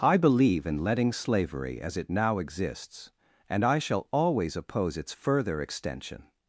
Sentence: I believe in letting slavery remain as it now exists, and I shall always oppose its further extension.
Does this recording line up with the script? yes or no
no